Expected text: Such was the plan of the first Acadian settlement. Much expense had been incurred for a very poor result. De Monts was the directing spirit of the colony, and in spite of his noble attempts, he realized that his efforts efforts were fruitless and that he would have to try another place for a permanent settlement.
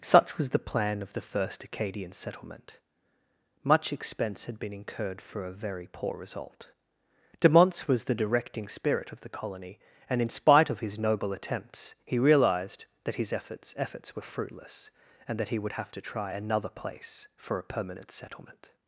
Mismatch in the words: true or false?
false